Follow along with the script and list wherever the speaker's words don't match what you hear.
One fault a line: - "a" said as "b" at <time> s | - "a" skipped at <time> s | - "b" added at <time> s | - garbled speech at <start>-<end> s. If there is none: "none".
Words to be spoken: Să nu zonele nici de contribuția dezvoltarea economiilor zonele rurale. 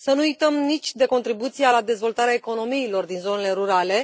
- "zonele" said as "uităm" at 0.2 s
- "la" added at 1.7 s
- "din" added at 3.1 s